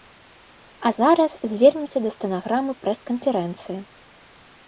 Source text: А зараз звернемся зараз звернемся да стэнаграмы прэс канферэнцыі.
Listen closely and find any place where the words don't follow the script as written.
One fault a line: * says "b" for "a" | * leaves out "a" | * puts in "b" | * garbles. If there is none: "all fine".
* leaves out "зараз звернемся"